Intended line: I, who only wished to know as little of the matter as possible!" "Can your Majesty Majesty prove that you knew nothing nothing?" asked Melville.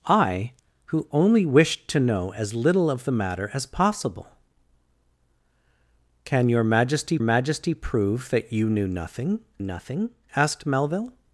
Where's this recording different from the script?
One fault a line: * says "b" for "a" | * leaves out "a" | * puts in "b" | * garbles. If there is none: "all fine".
all fine